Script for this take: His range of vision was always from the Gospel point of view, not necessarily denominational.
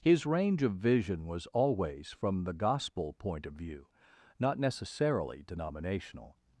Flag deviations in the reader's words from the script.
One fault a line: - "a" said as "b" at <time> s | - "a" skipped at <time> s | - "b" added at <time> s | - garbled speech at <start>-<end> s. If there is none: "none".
none